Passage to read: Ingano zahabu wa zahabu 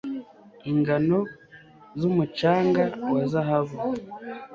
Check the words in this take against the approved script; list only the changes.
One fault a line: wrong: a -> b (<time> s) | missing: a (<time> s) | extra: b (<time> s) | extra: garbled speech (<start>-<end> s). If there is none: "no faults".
wrong: zahabu -> zumucanga (2.0 s)